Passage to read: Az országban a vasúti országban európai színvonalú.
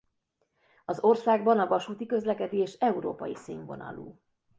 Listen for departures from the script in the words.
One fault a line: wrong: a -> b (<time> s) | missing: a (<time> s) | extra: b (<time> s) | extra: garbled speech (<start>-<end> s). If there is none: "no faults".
wrong: országban -> közlekedés (2.0 s)